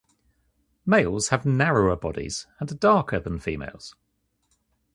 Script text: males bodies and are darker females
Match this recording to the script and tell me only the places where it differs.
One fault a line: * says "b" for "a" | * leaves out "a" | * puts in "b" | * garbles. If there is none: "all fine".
* puts in "have narrower"
* puts in "than"